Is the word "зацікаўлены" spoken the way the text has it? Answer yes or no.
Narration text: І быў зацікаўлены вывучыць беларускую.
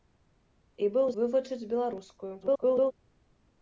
no